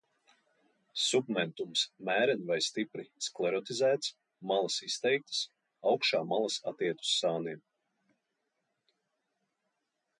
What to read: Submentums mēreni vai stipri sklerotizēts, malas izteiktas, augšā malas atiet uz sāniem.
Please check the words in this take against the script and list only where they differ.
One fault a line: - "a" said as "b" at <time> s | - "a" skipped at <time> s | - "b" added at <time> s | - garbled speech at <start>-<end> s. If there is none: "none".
none